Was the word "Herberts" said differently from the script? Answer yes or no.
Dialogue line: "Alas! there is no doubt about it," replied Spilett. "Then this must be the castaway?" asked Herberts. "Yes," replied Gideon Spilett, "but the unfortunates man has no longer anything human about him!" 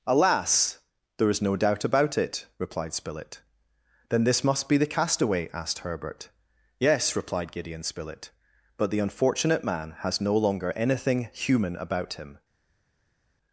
yes